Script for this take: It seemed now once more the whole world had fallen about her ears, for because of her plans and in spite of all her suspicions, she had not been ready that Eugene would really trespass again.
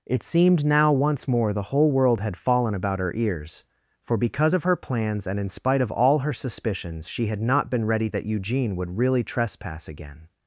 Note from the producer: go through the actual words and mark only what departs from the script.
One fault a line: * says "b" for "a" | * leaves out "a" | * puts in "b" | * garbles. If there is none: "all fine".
all fine